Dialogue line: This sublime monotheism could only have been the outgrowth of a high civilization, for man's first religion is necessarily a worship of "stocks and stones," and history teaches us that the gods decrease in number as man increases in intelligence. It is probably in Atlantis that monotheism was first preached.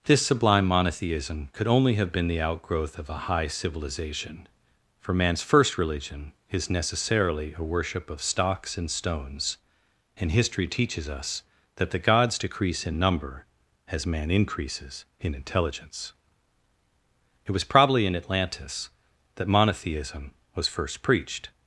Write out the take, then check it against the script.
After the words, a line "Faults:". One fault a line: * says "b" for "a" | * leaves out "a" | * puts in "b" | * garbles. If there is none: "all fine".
This sublime monotheism could only have been the outgrowth of a high civilization, for man's first religion is necessarily a worship of "stocks and stones," and history teaches us that the gods decrease in number as man increases in intelligence. It was probably in Atlantis that monotheism was first preached.
Faults:
* says "was" for "is"